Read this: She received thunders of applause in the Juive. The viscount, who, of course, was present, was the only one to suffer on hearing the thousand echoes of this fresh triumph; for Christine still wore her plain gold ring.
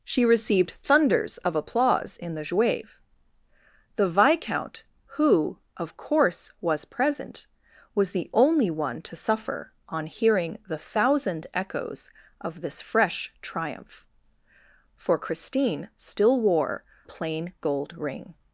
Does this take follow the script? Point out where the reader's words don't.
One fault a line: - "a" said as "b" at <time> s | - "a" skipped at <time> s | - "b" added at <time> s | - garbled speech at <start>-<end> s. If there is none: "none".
- "her" skipped at 16.8 s